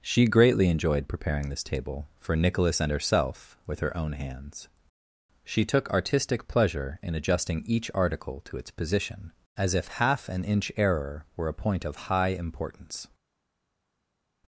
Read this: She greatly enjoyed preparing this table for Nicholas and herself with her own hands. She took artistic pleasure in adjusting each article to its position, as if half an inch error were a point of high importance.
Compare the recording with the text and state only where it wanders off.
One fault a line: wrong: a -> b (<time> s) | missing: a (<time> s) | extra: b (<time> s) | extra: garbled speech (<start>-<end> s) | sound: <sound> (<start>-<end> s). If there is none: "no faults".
no faults